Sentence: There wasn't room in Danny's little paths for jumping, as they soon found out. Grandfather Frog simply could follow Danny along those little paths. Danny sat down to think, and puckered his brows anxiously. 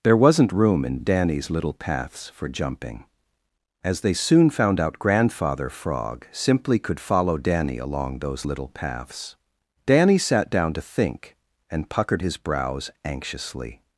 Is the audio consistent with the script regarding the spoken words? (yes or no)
yes